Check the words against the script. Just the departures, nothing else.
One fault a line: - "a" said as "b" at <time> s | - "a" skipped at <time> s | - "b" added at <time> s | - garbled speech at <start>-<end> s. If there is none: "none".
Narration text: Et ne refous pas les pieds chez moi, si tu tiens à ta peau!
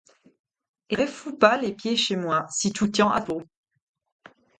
- "ne" skipped at 1.0 s
- "ta" skipped at 3.2 s